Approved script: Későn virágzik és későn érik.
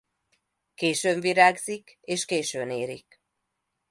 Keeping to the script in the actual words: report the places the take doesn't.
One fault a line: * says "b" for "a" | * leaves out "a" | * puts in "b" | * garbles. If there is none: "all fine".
all fine